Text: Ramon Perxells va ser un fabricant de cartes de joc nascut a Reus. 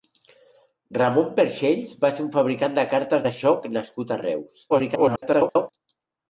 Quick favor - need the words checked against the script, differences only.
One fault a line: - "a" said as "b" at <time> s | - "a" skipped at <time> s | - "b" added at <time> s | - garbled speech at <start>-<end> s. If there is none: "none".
- garbled speech at 4.7-5.7 s